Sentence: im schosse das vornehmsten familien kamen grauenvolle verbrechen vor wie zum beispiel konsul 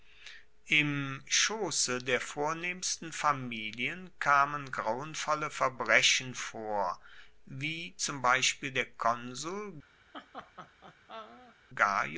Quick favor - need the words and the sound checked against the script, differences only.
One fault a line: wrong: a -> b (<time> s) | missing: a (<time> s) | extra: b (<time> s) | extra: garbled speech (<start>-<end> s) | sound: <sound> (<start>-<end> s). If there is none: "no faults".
wrong: das -> der (2.0 s)
extra: der (8.7 s)
sound: laugh (10.1-11.6 s)